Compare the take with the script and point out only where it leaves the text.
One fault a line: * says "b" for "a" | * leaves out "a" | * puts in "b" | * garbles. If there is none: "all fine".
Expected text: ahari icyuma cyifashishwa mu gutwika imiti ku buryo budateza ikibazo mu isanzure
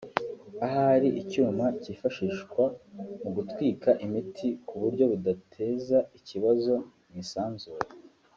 all fine